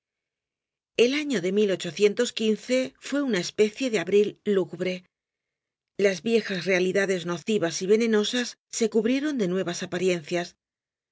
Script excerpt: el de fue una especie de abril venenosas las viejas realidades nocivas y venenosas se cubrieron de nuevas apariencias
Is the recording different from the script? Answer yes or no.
yes